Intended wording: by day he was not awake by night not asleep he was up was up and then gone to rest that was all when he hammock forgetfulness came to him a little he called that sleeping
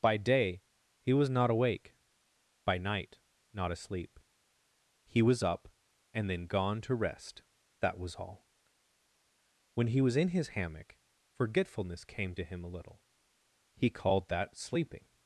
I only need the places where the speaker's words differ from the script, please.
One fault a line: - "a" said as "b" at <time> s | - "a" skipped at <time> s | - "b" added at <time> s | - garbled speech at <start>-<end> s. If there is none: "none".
- "was up" skipped at 5.7 s
- "was in his" added at 10.0 s